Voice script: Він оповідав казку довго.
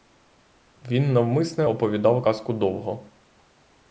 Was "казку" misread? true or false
false